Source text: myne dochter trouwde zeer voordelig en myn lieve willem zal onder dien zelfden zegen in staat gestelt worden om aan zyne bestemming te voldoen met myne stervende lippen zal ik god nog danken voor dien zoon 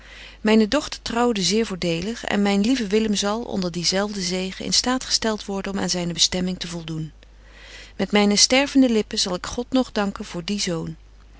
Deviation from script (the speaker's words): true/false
false